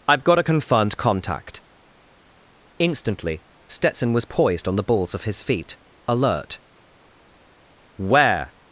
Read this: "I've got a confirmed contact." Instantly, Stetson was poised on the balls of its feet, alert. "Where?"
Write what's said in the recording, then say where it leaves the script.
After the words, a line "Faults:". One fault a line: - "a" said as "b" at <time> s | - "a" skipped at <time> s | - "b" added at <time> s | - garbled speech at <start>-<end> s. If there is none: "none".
"I've got a confirmed contact." Instantly, Stetson was poised on the balls of his feet, alert. "Where?"
Faults:
- "its" said as "his" at 5.2 s